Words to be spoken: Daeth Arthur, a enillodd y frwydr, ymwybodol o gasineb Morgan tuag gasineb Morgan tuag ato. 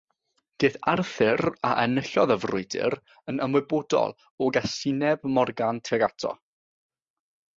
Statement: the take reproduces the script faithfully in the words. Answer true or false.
false